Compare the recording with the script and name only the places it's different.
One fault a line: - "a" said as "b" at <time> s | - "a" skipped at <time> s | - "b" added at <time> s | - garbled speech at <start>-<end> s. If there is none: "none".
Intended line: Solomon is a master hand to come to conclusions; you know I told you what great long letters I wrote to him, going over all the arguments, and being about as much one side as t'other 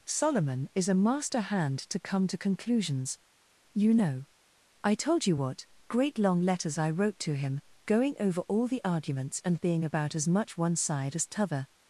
none